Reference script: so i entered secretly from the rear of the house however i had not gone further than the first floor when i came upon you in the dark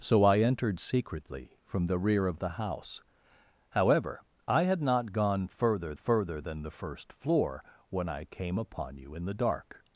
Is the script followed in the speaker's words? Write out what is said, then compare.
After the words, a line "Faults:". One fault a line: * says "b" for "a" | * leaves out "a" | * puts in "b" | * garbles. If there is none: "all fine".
so i entered secretly from the rear of the house however i had not gone further further than the first floor when i came upon you in the dark
Faults:
* puts in "further"